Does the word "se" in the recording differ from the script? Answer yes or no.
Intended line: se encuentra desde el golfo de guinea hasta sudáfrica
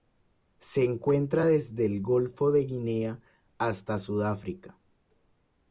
no